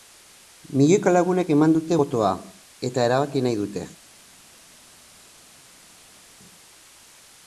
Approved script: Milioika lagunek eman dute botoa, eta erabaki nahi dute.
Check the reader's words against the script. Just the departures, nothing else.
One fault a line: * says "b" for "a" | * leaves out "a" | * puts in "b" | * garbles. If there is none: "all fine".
all fine